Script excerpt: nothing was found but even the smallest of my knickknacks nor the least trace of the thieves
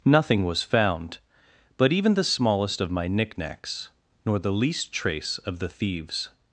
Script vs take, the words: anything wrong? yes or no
no